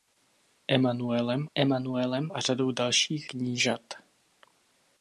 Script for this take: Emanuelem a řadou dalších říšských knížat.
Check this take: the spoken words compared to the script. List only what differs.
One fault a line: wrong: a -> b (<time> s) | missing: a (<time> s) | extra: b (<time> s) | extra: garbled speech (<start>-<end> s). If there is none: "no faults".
extra: emanuelem (1.5 s)
missing: říšských (3.3 s)